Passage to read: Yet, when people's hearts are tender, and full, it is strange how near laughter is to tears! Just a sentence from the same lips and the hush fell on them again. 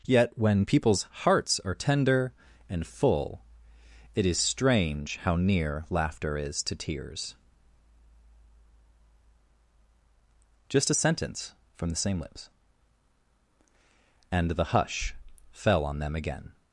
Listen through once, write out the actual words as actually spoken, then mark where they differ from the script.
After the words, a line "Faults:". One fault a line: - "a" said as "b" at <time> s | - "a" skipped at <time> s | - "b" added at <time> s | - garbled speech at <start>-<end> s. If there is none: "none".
Yet, when people's hearts are tender, and full, it is strange how near laughter is to tears! Just a sentence from the same lips and the hush fell on them again.
Faults:
none